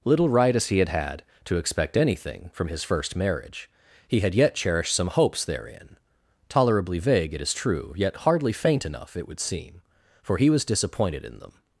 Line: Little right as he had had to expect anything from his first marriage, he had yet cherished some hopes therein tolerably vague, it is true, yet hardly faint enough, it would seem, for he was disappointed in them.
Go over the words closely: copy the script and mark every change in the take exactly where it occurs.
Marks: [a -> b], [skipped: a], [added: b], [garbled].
Little right as he had had to expect anything from his first marriage, he had yet cherished some hopes therein tolerably vague, it is true, yet hardly faint enough, it would seem, for he was disappointed in them.